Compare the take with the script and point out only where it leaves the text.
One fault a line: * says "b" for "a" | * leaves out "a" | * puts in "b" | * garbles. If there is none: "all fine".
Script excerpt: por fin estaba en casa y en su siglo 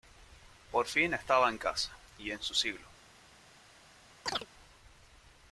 all fine